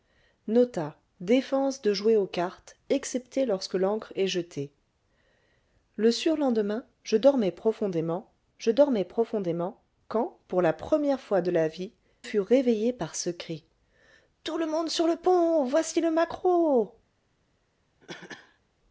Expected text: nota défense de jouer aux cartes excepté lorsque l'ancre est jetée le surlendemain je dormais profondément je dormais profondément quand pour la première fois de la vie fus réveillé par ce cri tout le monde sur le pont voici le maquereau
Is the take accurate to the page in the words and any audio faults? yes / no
no